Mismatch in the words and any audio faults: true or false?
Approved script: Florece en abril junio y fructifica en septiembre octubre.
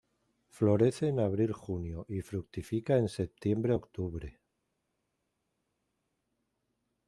false